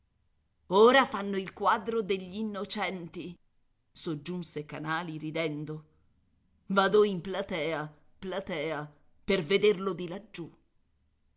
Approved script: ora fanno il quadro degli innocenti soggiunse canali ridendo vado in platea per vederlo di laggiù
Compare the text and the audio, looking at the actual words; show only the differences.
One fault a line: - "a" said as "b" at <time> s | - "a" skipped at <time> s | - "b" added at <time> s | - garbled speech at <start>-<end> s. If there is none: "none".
- "platea" added at 8.2 s